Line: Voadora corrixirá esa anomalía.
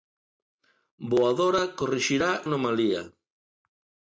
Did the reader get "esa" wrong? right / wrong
wrong